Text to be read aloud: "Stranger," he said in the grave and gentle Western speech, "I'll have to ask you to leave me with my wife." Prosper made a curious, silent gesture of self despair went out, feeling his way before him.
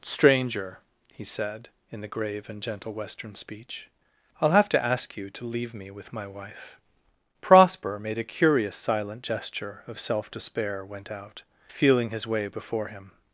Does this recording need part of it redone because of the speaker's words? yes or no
no